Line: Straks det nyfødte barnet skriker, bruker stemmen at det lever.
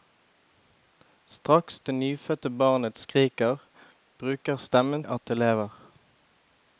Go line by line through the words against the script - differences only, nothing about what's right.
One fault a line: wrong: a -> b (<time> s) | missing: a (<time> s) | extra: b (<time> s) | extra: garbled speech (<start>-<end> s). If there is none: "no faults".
no faults